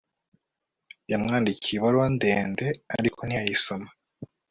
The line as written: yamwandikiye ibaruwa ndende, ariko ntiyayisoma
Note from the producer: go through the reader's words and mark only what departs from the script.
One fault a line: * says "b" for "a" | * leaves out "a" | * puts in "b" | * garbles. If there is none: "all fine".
all fine